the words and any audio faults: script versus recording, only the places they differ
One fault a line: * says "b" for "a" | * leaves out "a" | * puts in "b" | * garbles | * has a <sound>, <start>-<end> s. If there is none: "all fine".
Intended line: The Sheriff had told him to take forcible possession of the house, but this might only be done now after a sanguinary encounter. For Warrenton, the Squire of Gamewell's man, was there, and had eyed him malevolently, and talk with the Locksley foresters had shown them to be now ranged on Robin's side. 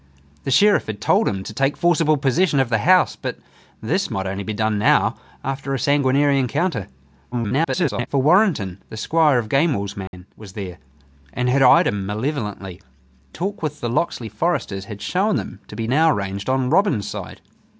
* garbles
* has a dropout, 10.1-10.1 s
* leaves out "and"